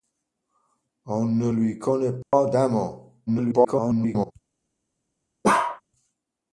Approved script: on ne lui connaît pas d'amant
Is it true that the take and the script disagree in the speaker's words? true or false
true